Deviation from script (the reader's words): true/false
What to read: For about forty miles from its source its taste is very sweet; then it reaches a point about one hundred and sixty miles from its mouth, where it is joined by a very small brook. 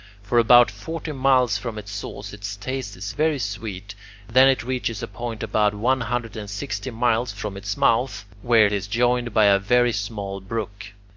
false